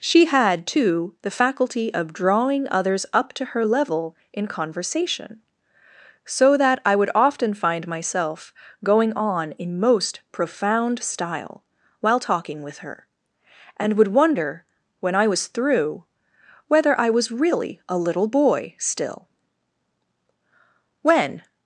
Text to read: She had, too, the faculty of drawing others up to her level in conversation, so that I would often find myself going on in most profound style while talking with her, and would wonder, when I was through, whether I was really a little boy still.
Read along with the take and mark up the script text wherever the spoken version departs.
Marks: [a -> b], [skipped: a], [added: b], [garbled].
She had, too, the faculty of drawing others up to her level in conversation, so that I would often find myself going on in most profound style while talking with her, and would wonder, when I was through, whether I was really a little boy still. [added: When]